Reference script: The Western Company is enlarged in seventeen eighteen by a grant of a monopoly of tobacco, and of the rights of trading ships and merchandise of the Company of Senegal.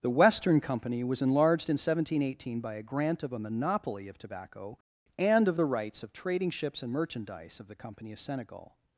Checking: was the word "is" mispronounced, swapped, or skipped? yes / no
yes